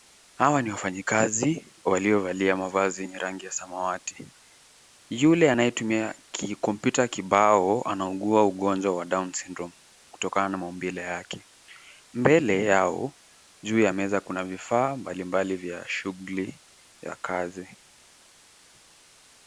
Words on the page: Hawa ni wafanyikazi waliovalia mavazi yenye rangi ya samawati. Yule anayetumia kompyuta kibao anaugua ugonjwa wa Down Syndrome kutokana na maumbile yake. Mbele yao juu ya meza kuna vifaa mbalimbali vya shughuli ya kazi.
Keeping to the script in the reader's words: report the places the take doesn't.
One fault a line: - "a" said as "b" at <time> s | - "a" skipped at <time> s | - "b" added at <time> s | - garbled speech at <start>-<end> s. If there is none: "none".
none